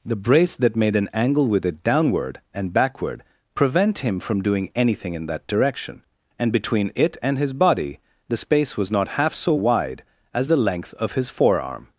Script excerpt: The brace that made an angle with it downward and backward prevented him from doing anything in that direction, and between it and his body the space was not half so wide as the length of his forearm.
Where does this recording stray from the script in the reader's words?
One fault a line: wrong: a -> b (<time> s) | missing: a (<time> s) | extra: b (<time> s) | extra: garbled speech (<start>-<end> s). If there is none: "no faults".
wrong: prevented -> prevent (3.5 s)